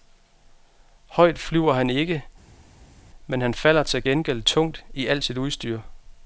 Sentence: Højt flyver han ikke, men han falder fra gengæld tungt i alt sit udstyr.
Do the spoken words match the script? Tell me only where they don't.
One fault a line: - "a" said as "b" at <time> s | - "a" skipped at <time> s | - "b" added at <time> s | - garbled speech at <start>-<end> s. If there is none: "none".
- "fra" said as "til" at 3.8 s